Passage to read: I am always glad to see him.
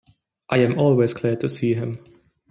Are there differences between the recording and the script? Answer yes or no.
no